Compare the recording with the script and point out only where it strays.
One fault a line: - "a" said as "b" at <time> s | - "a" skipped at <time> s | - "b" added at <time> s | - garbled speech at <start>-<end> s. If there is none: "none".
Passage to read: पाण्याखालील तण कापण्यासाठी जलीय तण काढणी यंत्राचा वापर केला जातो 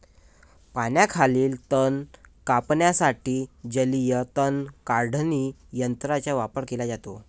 none